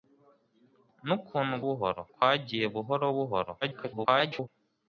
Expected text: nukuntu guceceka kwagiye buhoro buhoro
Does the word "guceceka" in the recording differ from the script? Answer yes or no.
yes